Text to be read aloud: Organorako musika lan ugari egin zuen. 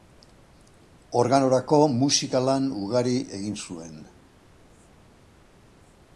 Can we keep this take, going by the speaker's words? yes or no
yes